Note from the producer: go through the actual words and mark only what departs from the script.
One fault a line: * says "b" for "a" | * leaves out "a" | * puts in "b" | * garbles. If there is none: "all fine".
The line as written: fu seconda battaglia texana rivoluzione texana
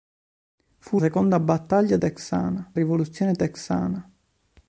all fine